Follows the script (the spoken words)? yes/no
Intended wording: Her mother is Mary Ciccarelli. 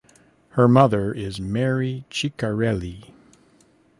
yes